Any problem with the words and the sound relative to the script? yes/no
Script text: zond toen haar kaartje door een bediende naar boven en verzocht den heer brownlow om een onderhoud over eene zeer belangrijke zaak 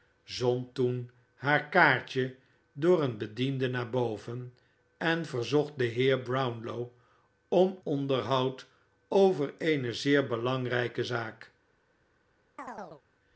yes